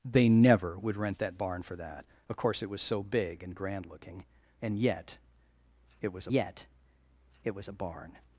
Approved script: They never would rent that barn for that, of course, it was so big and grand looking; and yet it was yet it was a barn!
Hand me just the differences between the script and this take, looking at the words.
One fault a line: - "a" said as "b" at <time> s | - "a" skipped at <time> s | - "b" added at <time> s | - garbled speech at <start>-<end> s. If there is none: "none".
none